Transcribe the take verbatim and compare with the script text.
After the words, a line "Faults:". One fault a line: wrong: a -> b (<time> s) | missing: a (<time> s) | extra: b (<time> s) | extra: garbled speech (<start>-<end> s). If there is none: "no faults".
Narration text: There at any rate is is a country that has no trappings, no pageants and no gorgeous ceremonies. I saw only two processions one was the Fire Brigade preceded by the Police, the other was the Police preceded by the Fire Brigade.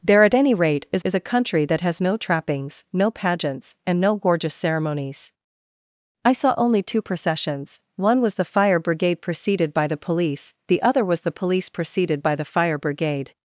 There at any rate is is a country that has no trappings, no pageants and no gorgeous ceremonies. I saw only two processions one was the Fire Brigade preceded by the Police, the other was the Police preceded by the Fire Brigade.
Faults:
no faults